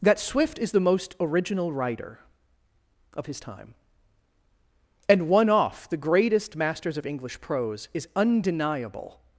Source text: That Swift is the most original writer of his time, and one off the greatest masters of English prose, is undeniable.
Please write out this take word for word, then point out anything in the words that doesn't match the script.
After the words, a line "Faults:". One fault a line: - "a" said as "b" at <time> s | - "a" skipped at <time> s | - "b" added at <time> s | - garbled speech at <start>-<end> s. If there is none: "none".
That Swift is the most original writer of his time, and one off the greatest masters of English prose, is undeniable.
Faults:
none